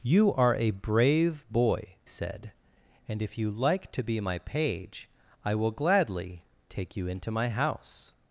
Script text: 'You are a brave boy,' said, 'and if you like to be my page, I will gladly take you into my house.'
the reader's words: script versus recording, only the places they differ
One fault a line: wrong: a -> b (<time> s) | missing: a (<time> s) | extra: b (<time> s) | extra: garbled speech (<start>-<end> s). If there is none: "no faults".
no faults